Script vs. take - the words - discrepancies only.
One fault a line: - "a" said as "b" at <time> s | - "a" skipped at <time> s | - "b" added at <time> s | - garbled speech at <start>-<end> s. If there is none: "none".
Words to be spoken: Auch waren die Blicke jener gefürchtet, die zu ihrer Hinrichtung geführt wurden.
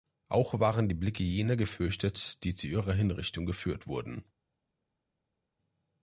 none